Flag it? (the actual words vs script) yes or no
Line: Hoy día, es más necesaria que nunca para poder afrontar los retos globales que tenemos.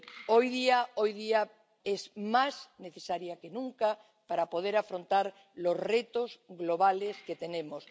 no